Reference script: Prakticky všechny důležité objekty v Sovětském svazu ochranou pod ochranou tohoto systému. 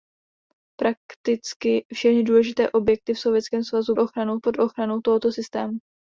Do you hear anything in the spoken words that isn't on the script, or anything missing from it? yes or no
no